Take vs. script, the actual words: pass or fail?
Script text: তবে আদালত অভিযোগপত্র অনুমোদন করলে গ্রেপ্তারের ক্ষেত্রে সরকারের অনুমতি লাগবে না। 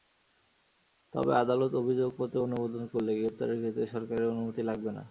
pass